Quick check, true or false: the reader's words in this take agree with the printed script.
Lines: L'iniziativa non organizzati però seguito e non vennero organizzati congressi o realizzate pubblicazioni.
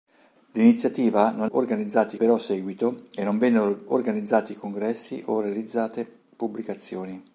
true